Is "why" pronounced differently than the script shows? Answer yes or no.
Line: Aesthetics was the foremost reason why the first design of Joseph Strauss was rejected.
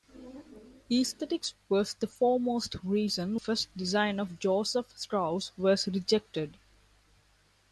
yes